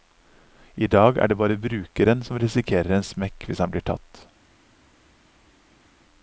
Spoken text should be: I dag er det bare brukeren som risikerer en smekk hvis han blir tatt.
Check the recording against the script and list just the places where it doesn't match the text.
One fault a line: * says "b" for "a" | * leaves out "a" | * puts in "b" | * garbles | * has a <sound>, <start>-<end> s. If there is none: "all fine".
all fine